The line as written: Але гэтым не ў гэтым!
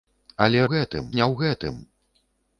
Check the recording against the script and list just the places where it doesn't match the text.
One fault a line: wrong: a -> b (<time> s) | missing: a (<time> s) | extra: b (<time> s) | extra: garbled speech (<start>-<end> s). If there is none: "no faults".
no faults